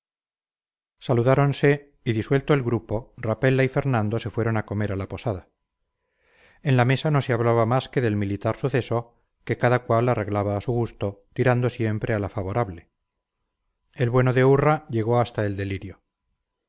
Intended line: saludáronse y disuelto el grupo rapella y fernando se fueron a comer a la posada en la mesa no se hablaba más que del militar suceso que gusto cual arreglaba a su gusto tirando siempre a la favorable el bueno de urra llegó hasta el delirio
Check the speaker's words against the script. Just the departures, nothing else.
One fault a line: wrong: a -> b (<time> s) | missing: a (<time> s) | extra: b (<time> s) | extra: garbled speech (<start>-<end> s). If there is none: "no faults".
wrong: gusto -> cada (9.6 s)